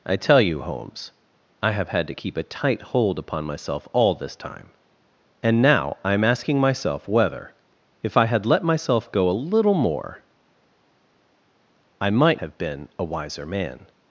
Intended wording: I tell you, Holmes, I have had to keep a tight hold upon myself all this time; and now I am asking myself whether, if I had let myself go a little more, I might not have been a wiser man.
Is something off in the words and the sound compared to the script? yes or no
yes